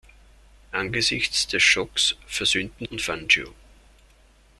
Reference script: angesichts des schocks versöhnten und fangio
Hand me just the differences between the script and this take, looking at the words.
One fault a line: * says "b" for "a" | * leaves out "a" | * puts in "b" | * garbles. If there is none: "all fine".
all fine